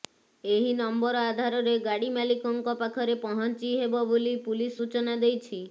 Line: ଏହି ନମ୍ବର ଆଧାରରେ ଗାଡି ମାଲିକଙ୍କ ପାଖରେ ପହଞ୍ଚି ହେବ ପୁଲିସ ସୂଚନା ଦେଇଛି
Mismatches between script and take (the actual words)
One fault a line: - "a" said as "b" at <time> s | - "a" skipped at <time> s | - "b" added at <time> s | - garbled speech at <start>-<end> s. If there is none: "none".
- "ବୋଲି" added at 4.1 s